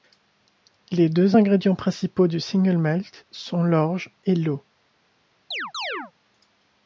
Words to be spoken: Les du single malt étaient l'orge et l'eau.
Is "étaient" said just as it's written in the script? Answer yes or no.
no